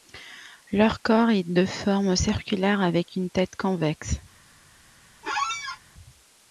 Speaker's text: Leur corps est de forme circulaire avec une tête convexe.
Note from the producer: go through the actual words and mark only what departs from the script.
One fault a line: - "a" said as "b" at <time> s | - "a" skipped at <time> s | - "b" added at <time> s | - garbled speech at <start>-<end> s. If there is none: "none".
none